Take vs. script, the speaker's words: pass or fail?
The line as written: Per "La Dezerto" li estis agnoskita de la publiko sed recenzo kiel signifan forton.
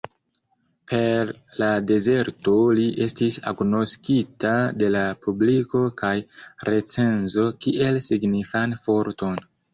fail